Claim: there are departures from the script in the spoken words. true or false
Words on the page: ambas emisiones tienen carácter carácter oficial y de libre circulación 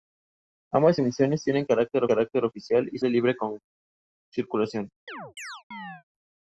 false